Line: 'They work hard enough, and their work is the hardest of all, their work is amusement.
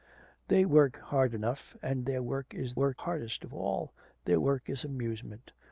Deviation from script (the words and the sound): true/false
true